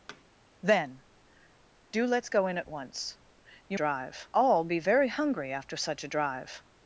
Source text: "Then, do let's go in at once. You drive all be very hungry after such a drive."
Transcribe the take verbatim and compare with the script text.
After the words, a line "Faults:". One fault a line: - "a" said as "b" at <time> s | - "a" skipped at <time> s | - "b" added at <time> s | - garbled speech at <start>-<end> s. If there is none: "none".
"Then, do let's go in at once. You drive all be very hungry after such a drive."
Faults:
none